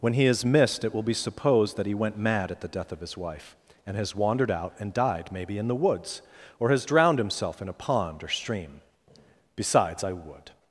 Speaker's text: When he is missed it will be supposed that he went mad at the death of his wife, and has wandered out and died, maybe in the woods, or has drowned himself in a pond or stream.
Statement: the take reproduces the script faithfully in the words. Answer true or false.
false